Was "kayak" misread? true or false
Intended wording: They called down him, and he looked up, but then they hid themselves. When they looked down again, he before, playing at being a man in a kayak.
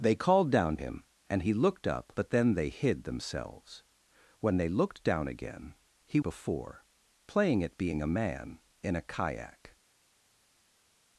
false